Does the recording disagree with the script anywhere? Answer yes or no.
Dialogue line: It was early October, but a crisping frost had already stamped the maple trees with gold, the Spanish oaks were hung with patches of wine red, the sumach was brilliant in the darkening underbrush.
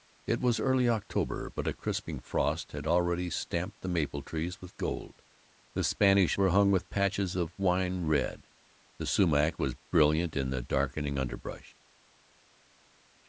yes